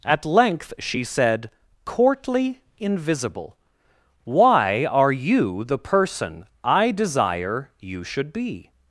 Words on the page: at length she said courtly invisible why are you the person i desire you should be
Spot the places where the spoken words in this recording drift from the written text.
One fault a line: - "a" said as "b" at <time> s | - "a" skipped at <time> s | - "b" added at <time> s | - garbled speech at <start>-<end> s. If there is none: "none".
none